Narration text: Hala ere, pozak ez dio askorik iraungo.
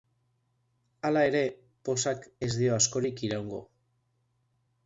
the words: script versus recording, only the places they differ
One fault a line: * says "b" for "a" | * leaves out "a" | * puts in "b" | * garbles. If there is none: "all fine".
all fine